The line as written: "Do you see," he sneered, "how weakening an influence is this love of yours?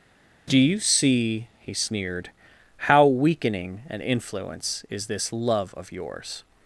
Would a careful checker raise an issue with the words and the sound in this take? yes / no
no